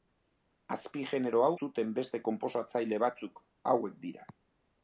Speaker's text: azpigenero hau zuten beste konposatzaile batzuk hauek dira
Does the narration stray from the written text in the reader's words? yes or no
no